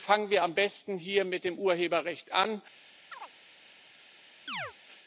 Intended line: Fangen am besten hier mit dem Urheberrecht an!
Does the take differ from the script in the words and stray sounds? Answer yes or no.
yes